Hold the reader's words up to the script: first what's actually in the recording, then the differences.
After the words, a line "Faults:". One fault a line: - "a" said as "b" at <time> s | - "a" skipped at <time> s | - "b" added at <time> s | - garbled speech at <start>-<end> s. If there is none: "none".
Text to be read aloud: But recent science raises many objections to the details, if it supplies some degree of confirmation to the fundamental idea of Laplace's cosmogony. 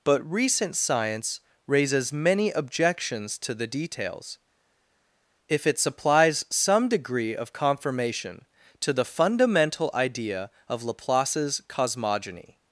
But recent science raises many objections to the details, if it supplies some degree of confirmation to the fundamental idea of Laplace's cosmogony.
Faults:
none